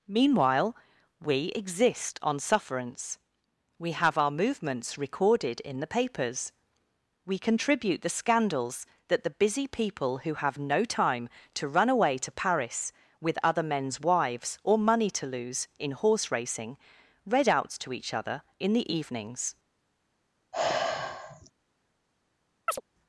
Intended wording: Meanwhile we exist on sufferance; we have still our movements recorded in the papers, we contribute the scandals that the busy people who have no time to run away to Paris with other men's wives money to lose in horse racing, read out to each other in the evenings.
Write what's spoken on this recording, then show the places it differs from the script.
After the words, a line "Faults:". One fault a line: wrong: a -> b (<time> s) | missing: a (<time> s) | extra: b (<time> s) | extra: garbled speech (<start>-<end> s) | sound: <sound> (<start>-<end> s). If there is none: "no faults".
Meanwhile we exist on sufferance; we have our movements recorded in the papers, we contribute the scandals that the busy people who have no time to run away to Paris with other men's wives or money to lose in horse racing, read out to each other in the evenings.
Faults:
missing: still (4.2 s)
extra: or (14.6 s)
sound: sigh (20.5-21.5 s)
sound: chirp (22.7-22.8 s)